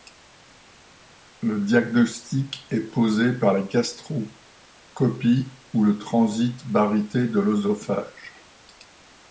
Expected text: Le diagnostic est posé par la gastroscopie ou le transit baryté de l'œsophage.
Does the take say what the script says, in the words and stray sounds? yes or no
yes